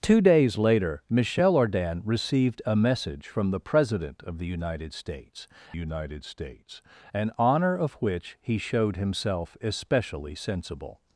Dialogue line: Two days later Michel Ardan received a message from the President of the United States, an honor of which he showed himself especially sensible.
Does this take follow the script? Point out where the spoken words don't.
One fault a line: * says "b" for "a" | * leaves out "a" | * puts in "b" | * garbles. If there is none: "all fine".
* puts in "United States"